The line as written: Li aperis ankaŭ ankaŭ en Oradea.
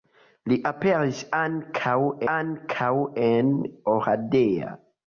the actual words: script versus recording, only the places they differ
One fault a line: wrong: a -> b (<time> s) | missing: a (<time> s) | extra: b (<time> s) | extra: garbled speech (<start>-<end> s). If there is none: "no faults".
no faults